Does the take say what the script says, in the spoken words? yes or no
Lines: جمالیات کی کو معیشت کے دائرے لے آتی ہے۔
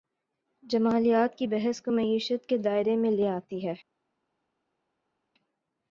no